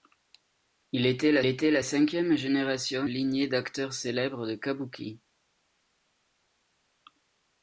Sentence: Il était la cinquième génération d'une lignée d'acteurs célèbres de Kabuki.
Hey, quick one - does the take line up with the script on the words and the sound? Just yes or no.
no